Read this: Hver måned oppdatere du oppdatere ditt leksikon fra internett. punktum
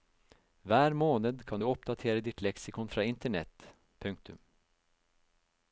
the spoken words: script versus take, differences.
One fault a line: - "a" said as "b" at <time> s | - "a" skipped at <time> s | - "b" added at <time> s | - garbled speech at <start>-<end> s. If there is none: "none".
- "oppdatere" said as "kan" at 1.5 s